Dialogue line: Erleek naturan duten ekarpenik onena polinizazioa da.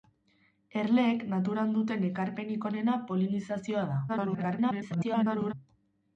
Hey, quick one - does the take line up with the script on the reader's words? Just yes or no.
no